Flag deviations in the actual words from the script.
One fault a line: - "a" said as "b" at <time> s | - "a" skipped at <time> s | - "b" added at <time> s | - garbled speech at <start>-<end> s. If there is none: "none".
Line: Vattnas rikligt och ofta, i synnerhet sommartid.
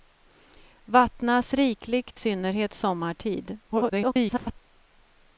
- "och ofta i" skipped at 2.2 s
- garbled speech at 3.7-4.6 s